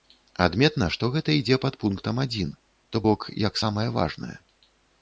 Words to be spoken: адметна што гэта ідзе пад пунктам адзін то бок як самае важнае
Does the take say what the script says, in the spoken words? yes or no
yes